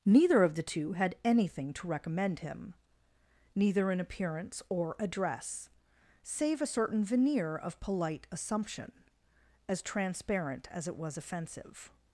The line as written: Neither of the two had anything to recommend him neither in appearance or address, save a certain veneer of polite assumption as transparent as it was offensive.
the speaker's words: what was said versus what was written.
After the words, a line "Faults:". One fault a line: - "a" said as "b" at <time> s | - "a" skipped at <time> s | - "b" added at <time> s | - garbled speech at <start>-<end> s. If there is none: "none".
Neither of the two had anything to recommend him neither in appearance or address, save a certain veneer of polite assumption as transparent as it was offensive.
Faults:
none